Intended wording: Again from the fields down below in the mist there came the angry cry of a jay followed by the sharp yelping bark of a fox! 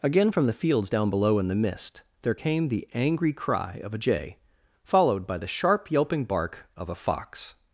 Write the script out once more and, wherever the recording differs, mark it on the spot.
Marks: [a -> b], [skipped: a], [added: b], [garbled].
Again from the fields down below in the mist there came the angry cry of a jay followed by the sharp yelping bark of a fox!